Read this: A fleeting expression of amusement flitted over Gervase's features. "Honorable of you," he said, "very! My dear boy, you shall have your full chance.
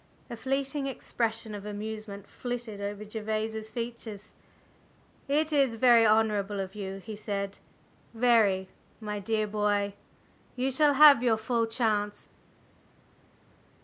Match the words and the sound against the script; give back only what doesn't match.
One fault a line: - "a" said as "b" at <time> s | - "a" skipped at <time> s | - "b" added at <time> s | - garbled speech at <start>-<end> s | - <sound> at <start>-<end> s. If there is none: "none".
- "It is very" added at 5.3 s